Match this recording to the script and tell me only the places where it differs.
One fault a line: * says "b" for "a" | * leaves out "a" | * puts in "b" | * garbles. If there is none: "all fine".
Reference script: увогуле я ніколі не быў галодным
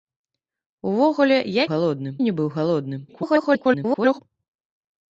* says "галодным" for "ніколі"
* garbles